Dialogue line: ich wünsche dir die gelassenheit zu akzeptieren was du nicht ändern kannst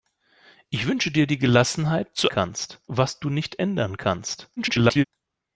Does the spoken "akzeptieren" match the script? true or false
false